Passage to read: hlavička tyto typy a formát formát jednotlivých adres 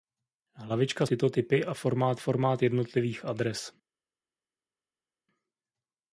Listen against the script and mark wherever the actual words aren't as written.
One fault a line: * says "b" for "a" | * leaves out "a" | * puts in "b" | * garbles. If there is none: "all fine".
all fine